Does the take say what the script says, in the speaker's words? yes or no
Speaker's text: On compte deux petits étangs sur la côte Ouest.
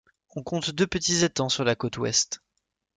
yes